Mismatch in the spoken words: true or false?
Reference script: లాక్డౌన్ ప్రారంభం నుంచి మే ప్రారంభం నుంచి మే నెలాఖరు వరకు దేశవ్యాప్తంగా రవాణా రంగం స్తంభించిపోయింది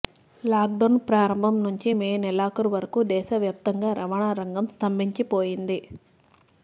true